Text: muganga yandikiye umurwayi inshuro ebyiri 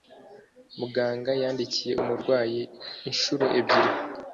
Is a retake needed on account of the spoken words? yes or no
no